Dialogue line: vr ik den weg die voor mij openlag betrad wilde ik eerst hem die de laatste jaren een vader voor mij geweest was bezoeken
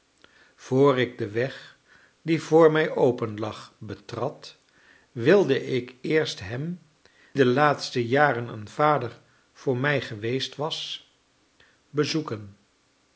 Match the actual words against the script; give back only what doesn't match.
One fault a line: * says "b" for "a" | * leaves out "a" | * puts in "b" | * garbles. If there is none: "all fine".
* leaves out "die"